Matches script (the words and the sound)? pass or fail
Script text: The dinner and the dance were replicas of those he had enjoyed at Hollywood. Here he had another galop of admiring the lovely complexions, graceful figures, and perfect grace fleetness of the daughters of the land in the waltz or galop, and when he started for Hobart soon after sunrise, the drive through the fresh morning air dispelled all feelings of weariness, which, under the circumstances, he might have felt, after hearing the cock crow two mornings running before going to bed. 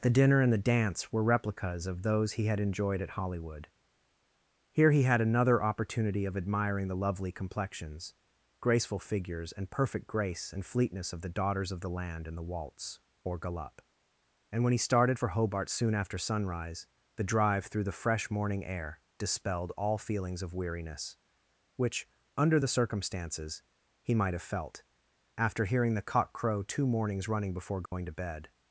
fail